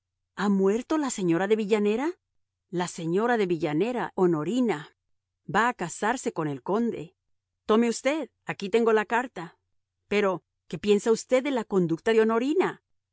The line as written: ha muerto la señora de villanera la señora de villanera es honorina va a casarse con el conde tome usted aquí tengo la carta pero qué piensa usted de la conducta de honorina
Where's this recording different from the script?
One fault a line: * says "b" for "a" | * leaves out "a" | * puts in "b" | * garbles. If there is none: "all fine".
* leaves out "es"